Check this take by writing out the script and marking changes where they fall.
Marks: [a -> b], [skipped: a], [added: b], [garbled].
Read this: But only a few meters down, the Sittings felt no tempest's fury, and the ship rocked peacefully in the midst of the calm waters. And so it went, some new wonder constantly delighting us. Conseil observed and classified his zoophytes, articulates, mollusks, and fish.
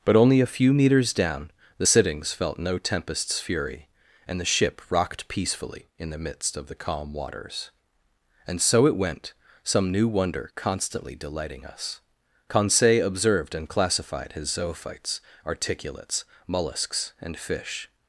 But only a few meters down, the Sittings felt no tempest's fury, and the ship rocked peacefully in the midst of the calm waters. And so it went, some new wonder constantly delighting us. Conseil observed and classified his zoophytes, articulates, mollusks, and fish.